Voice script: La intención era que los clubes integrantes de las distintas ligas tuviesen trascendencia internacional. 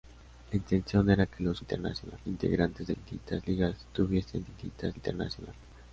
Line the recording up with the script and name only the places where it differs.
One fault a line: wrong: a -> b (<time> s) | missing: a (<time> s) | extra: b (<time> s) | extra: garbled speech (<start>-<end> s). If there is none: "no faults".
wrong: clubes -> internacional (1.6 s)
missing: las (2.9 s)
wrong: trascendencia -> distintas (4.4 s)